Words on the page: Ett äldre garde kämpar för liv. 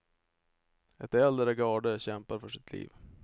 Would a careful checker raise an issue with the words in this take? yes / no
yes